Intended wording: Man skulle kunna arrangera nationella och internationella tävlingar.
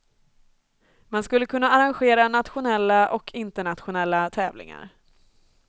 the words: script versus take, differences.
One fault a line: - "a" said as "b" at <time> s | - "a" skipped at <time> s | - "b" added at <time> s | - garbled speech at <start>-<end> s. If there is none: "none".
none